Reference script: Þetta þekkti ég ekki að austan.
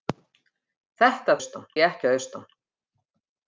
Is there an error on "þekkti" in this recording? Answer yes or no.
yes